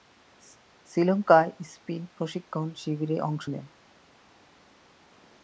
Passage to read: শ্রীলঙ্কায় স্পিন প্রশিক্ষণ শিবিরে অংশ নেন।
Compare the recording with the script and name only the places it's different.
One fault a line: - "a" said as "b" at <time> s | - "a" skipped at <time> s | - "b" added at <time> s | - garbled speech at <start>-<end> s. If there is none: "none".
none